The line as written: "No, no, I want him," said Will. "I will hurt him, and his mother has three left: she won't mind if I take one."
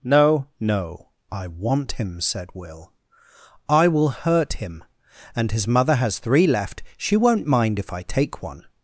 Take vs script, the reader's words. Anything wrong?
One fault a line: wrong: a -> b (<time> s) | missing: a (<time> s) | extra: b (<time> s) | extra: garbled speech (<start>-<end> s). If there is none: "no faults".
no faults